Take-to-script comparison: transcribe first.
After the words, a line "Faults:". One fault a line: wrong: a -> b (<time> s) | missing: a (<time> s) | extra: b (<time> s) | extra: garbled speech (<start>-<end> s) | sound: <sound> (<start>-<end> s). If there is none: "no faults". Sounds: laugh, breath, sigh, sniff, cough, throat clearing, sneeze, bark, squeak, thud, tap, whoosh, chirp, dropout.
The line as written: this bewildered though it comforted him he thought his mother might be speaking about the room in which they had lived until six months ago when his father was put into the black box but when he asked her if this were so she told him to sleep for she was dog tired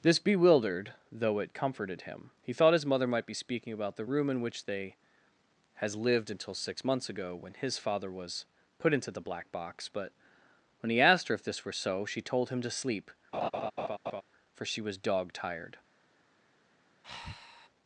this bewildered though it comforted him he thought his mother might be speaking about the room in which they has lived until six months ago when his father was put into the black box but when he asked her if this were so she told him to sleep for she was dog tired
Faults:
wrong: had -> has (5.8 s)
sound: laugh (13.3-14.2 s)
sound: breath (17.0-17.7 s)